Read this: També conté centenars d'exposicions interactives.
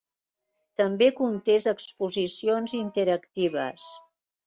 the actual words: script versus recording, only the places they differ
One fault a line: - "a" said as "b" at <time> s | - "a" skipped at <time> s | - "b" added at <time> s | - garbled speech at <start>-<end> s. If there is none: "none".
- "centenars" skipped at 1.6 s